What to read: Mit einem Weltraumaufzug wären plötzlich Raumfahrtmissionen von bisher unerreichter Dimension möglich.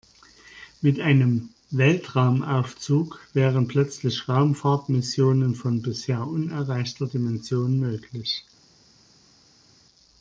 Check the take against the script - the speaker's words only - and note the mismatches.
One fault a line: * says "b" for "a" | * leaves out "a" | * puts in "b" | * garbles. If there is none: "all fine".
all fine